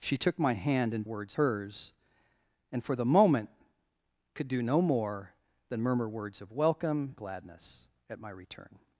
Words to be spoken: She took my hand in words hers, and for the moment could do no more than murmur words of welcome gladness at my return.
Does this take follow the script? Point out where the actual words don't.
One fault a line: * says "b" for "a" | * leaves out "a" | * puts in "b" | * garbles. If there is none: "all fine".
all fine